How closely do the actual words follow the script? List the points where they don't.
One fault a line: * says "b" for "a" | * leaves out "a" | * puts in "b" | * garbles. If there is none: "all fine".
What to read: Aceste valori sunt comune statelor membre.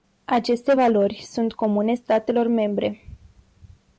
all fine